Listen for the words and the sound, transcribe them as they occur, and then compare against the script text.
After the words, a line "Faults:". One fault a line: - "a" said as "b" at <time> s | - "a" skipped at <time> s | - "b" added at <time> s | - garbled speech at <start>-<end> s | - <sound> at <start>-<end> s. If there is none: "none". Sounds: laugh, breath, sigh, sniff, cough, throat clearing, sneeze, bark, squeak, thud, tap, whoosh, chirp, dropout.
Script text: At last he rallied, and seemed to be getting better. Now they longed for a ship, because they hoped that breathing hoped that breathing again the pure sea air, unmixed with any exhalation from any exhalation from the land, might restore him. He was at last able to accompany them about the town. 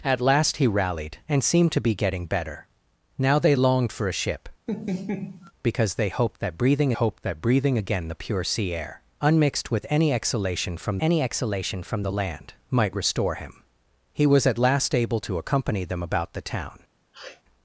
At last he rallied, and seemed to be getting better. Now they longed for a ship, because they hoped that breathing hoped that breathing again the pure sea air, unmixed with any exhalation from any exhalation from the land, might restore him. He was at last able to accompany them about the town.
Faults:
- laugh at 4.7-5.5 s
- sniff at 17.1-17.4 s